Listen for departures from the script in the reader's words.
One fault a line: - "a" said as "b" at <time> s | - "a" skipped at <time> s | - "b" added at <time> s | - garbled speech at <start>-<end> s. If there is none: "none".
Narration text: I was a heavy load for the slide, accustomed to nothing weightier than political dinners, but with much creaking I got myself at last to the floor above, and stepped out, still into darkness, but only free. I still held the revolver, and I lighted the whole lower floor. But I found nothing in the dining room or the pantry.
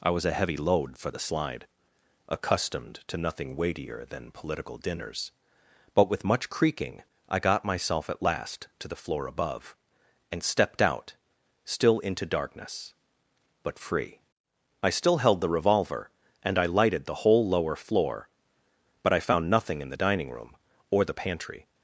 - "only" skipped at 13.8 s